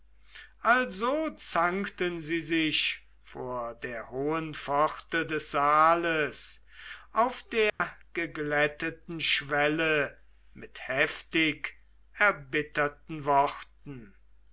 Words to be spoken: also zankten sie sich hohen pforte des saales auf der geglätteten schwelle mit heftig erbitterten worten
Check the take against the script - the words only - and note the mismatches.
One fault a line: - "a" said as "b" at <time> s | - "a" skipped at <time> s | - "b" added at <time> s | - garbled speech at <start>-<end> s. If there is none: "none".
- "vor der" added at 3.2 s